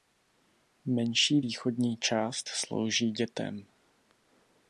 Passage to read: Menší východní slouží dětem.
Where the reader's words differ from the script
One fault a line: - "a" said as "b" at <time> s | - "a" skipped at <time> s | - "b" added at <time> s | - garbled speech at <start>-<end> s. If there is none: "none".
- "část" added at 2.0 s